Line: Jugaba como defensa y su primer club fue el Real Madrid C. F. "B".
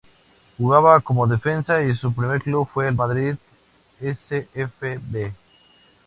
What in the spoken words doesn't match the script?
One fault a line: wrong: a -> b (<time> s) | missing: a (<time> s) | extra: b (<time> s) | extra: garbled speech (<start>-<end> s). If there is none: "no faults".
missing: Real (3.0 s)